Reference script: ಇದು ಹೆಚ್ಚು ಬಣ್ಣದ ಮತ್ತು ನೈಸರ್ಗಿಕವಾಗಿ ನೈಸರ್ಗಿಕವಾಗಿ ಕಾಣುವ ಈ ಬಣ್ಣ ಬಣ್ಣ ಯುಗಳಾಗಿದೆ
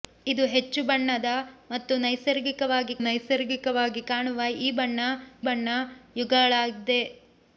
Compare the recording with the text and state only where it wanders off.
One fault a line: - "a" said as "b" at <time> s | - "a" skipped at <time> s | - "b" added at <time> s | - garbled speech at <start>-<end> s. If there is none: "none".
none